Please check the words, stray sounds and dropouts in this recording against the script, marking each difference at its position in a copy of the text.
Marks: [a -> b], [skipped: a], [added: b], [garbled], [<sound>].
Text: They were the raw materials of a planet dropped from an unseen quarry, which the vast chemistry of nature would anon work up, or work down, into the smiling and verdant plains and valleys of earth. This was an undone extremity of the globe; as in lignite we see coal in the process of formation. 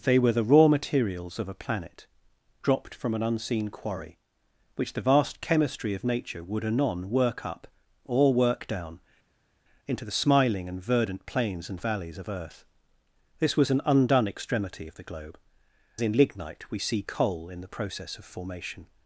They were the raw materials of a planet dropped from an unseen quarry, which the vast chemistry of nature would anon work up, or work down, into the smiling and verdant plains and valleys of earth. This was an undone extremity of the globe; [skipped: as] in lignite we see coal in the process of formation.